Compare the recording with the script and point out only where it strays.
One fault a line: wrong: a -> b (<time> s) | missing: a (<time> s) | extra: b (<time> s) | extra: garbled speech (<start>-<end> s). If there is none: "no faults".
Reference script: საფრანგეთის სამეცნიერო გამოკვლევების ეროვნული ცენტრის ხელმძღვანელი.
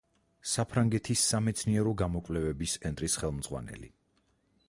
missing: ეროვნული (2.8 s)